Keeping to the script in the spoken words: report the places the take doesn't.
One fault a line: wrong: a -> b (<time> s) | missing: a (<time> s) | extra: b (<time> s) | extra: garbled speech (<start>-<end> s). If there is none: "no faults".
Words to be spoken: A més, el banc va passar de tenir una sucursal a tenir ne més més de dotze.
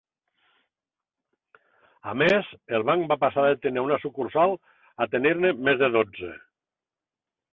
missing: més (5.8 s)